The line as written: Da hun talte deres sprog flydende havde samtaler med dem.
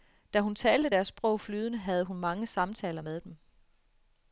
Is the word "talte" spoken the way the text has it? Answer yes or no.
yes